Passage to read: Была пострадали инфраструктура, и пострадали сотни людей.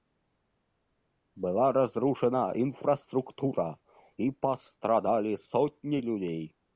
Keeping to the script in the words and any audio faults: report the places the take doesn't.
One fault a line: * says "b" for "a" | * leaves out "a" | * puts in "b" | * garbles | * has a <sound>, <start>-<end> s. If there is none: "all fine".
* says "разрушена" for "пострадали"